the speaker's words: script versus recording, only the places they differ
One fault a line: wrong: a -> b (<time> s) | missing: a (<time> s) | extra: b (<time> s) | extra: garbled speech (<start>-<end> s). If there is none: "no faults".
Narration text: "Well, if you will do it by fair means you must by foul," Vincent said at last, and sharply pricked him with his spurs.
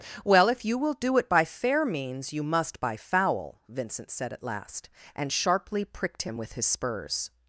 no faults